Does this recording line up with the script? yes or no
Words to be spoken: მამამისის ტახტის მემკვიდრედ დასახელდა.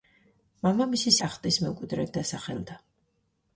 yes